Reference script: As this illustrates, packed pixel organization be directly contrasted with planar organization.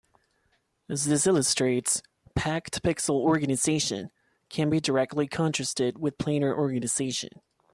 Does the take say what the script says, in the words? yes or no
no